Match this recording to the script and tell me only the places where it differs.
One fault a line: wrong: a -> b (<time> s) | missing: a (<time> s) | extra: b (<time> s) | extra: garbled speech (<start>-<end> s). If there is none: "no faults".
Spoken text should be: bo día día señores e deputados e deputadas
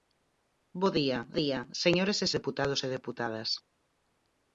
no faults